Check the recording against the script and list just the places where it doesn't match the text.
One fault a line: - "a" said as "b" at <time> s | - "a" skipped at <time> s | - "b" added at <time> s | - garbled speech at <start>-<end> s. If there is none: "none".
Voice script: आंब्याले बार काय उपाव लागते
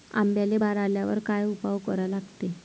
- "आल्यावर" added at 0.8 s
- "करा" added at 1.8 s